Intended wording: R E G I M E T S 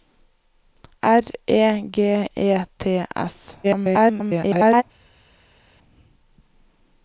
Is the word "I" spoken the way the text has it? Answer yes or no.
no